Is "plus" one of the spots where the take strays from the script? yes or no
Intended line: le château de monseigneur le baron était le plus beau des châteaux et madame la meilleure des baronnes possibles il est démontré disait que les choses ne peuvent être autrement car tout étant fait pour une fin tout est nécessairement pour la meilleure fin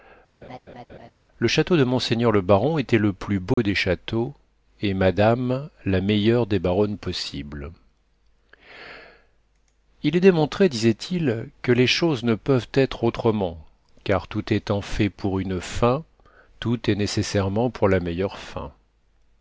no